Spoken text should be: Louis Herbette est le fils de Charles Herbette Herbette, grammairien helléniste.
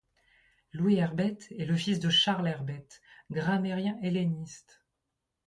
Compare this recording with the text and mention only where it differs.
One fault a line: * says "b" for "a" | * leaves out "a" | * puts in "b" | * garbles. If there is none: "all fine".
* leaves out "Herbette"